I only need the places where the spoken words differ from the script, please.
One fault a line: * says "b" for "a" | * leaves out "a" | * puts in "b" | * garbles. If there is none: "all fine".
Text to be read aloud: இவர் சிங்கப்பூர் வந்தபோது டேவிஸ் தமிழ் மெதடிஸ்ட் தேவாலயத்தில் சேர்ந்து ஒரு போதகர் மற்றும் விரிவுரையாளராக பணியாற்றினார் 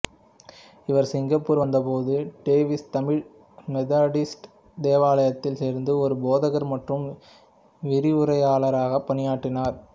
all fine